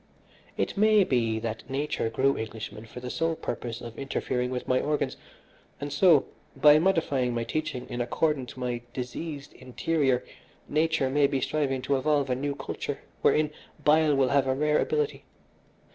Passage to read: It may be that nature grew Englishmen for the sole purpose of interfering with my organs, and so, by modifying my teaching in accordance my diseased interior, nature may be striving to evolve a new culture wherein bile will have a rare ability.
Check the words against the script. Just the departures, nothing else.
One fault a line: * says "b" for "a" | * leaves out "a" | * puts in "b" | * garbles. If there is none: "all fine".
all fine